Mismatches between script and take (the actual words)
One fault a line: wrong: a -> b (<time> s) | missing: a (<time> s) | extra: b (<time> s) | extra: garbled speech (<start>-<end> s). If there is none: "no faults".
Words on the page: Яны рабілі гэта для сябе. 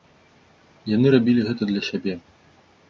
no faults